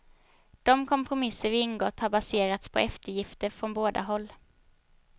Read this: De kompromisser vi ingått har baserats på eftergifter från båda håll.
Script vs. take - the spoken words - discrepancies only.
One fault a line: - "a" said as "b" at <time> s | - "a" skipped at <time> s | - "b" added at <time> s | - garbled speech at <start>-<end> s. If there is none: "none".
none